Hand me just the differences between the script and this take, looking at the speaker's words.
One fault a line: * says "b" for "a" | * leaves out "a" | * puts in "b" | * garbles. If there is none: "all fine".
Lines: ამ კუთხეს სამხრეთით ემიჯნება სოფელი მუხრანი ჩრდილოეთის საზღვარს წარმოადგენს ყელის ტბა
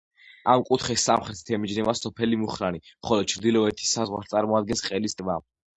* puts in "ხოლო"